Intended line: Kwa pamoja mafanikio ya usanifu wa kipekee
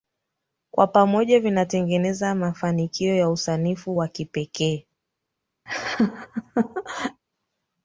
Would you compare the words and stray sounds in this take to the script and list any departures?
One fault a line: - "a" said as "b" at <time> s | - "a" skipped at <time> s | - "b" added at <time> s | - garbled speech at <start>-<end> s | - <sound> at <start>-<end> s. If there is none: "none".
- "vinatengeneza" added at 1.4 s
- laugh at 5.7-7.2 s